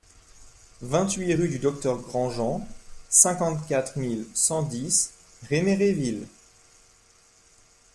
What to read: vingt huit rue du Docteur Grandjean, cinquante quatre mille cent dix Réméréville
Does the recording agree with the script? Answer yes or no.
yes